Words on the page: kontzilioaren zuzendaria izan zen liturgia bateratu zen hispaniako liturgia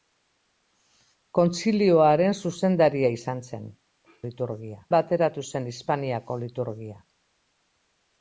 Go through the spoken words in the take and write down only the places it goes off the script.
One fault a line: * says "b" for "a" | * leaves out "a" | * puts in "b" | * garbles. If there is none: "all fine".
all fine